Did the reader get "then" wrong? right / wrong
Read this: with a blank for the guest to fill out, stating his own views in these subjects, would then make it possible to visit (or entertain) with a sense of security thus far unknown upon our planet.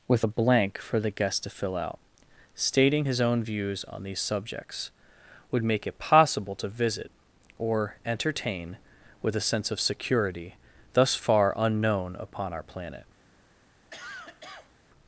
wrong